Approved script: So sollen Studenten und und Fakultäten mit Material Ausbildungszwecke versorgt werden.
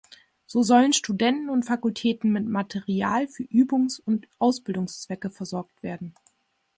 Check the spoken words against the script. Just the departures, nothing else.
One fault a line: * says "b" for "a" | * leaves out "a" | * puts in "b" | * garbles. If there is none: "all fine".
* leaves out "und"
* puts in "für Übungs und"